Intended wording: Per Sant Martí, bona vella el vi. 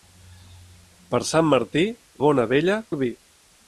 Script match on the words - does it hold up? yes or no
yes